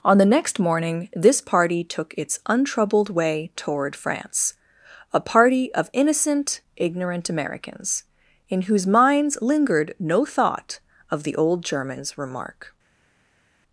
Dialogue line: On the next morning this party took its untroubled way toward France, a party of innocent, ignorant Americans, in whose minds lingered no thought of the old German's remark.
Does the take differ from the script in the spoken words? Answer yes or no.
no